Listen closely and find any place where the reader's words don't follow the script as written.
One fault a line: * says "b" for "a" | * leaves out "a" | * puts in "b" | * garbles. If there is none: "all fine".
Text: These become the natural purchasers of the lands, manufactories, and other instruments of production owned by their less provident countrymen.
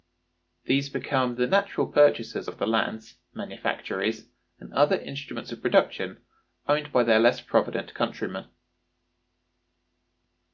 all fine